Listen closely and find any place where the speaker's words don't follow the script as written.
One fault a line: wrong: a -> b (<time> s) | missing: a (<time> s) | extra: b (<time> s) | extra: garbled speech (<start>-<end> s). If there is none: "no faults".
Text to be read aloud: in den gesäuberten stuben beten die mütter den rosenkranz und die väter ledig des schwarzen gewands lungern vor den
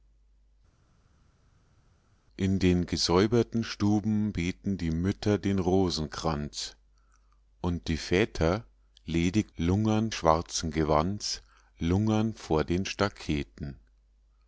wrong: des -> lungern (9.6 s)